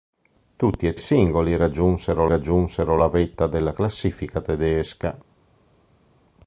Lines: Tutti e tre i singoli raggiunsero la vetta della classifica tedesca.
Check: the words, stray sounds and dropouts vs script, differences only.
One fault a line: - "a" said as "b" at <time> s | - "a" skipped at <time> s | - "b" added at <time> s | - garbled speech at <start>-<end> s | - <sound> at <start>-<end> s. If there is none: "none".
- "tre" skipped at 0.9 s
- "raggiunsero" added at 2.2 s